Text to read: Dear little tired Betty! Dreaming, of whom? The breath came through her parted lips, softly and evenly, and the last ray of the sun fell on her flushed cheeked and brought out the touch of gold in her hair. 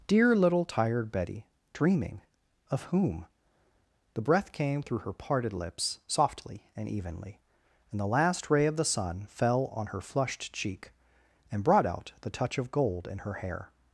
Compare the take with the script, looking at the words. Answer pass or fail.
fail